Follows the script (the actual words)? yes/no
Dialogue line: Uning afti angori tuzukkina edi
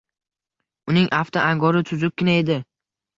yes